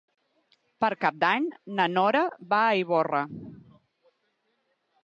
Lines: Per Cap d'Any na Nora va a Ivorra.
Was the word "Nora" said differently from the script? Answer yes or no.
no